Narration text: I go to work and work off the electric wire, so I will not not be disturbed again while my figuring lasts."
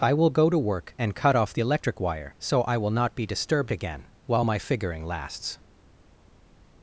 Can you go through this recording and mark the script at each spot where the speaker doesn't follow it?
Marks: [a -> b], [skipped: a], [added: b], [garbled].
I [added: will] go to work and [work -> cut] off the electric wire, so I will not [skipped: not] be disturbed again while my figuring lasts."